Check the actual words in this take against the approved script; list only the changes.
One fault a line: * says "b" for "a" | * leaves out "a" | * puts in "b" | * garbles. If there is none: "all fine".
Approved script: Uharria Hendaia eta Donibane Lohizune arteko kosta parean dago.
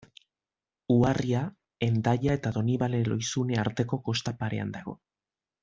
all fine